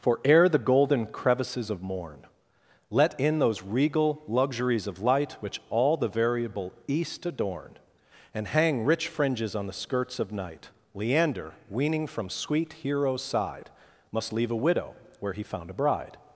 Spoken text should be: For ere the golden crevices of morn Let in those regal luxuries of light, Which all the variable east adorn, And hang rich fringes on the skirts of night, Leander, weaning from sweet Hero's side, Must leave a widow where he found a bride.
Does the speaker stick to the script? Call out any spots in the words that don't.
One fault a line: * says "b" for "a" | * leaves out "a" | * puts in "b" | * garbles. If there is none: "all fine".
all fine